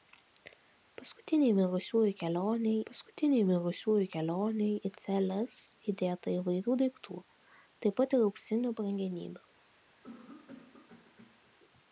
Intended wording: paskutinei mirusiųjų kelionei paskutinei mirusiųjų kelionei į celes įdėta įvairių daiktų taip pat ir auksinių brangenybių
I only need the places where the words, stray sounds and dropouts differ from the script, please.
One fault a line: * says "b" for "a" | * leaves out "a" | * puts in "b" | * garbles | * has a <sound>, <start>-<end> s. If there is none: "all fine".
* has a cough, 10.0-11.5 s